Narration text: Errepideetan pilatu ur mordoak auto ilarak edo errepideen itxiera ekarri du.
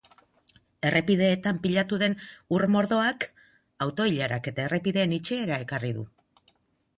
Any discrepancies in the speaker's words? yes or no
yes